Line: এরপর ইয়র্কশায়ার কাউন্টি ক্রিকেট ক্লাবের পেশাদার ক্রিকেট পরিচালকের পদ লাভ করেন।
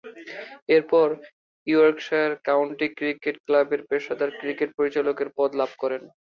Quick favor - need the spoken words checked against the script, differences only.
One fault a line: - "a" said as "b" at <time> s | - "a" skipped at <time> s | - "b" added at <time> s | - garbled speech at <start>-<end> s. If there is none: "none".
none